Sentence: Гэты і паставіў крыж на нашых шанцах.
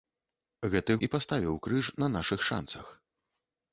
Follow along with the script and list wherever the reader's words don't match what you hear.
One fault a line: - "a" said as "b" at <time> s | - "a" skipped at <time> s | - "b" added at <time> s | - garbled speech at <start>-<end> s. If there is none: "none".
none